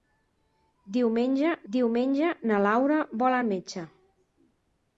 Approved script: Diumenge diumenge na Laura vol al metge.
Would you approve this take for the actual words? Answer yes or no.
yes